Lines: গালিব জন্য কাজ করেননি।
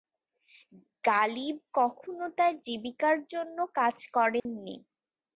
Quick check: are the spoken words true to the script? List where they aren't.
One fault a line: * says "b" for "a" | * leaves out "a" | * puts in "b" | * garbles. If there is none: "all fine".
* puts in "কখনো তার জীবিকার"